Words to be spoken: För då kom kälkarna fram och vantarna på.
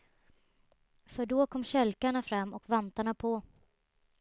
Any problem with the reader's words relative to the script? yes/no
no